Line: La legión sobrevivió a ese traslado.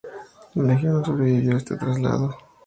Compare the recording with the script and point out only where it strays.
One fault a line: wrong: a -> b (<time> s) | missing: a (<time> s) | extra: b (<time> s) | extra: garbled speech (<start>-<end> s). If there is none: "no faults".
extra: no (0.9 s)
wrong: ese -> este (1.6 s)